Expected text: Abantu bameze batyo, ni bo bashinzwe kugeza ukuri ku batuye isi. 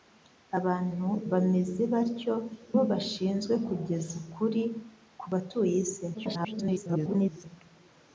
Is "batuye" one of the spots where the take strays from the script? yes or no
no